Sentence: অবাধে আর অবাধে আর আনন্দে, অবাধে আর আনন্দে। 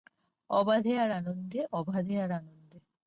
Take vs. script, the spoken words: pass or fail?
fail